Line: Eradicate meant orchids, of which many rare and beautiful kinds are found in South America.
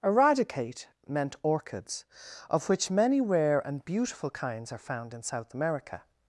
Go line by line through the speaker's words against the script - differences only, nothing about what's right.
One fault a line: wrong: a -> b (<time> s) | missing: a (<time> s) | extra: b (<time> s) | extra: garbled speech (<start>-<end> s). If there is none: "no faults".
no faults